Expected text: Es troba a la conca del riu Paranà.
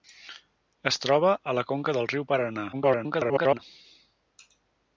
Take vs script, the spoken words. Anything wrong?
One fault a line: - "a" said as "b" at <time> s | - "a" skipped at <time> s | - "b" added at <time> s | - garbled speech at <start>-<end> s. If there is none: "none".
- garbled speech at 2.7-3.6 s